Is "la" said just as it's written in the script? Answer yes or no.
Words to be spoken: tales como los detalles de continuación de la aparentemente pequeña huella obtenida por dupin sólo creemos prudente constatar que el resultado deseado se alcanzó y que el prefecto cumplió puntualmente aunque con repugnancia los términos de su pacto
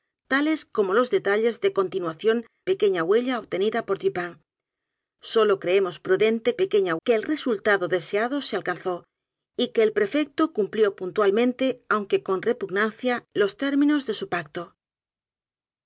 no